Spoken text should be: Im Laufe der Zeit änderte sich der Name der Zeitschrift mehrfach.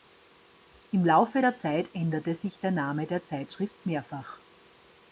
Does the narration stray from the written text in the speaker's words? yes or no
no